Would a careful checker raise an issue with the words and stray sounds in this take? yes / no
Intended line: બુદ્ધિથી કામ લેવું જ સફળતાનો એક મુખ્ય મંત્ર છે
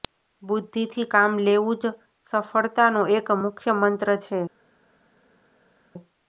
no